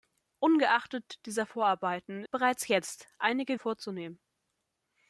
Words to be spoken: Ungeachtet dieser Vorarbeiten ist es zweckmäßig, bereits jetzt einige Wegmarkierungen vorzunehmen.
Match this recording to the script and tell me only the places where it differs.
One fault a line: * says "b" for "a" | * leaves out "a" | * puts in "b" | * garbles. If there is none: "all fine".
* leaves out "ist es zweckmäßig"
* leaves out "Wegmarkierungen"